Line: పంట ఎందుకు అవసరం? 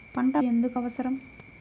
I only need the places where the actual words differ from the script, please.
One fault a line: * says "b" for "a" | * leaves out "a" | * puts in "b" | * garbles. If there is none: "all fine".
all fine